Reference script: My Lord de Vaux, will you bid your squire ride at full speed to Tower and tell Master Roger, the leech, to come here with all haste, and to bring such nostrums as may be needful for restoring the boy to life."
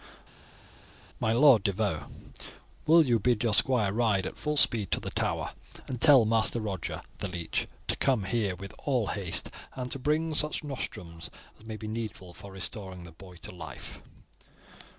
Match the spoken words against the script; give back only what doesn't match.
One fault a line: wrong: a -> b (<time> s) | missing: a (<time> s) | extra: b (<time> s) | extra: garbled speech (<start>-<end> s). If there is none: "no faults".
extra: the (5.0 s)